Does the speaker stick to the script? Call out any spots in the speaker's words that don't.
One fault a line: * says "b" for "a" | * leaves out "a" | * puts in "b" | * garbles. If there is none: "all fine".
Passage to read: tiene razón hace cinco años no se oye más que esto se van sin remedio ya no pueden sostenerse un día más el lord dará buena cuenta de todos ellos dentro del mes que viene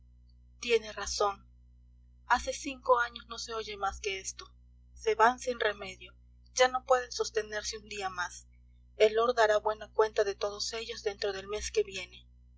all fine